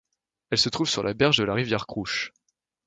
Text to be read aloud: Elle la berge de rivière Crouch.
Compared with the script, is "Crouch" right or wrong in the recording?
right